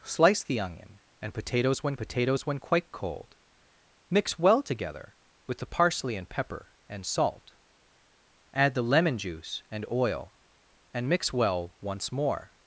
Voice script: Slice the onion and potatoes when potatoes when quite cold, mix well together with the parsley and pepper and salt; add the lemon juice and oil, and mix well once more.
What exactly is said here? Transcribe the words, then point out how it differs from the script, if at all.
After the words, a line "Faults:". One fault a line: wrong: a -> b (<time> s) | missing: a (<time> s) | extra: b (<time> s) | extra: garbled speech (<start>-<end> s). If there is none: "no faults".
Slice the onion and potatoes when potatoes when quite cold, mix well together with the parsley and pepper and salt; add the lemon juice and oil, and mix well once more.
Faults:
no faults